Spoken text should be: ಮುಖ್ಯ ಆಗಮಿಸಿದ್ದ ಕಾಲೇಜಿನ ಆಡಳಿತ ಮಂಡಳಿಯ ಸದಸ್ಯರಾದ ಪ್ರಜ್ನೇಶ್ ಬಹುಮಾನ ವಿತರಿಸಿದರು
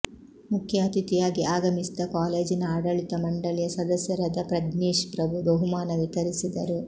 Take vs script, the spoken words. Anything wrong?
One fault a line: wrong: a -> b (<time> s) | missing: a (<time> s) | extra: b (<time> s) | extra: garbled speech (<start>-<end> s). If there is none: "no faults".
extra: ಅತಿಥಿಯಾಗಿ (0.8 s)
extra: ಪ್ರಭು (5.2 s)